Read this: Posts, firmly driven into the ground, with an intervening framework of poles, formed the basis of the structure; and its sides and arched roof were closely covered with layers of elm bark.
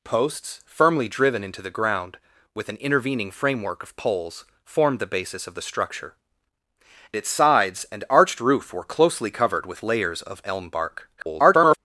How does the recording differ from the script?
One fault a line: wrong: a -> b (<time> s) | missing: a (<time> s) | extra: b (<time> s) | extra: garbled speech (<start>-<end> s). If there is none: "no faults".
missing: and (6.1 s)
extra: garbled speech (11.2-11.8 s)